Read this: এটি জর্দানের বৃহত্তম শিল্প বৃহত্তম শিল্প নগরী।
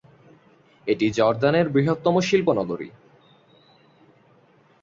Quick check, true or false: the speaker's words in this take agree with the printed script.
false